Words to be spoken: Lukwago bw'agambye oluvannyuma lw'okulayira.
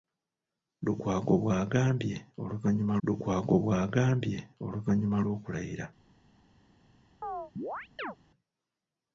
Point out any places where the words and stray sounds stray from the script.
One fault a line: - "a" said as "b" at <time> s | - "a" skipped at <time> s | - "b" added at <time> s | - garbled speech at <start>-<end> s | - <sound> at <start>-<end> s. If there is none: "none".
- "lukwago bw'agambye oluvannyuma" added at 3.1 s
- chirp at 7.2-8.2 s